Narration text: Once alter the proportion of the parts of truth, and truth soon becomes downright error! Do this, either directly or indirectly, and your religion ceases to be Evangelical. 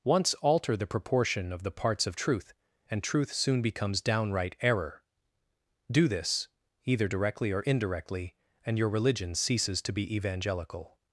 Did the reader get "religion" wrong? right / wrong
right